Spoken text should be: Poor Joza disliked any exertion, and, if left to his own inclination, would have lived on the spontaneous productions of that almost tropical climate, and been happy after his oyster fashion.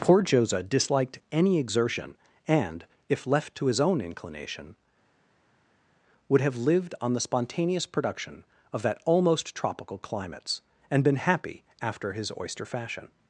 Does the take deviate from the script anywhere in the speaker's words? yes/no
yes